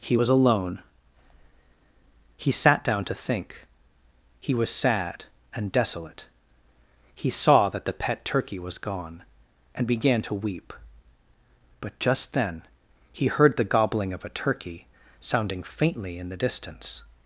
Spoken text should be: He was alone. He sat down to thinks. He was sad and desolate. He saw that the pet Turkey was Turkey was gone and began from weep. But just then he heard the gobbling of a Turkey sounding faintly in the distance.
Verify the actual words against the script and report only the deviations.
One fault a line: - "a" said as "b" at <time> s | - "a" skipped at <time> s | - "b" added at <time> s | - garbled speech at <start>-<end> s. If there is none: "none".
- "thinks" said as "think" at 3.1 s
- "Turkey was" skipped at 8.8 s
- "from" said as "to" at 10.2 s